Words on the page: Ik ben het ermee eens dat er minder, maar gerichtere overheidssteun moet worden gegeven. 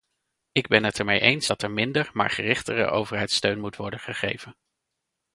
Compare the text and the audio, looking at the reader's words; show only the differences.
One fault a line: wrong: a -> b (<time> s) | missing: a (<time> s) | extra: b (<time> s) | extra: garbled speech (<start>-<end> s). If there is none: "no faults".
no faults